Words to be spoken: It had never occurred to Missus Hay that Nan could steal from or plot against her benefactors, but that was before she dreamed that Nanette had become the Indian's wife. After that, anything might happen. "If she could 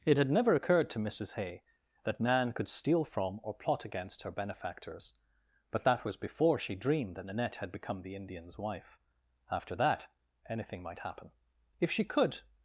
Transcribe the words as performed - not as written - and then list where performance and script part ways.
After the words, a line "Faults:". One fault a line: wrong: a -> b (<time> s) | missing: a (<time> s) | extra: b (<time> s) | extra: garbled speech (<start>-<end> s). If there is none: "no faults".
It had never occurred to Missus Hay that Nan could steal from or plot against her benefactors, but that was before she dreamed that Nanette had become the Indian's wife. After that, anything might happen. "If she could
Faults:
no faults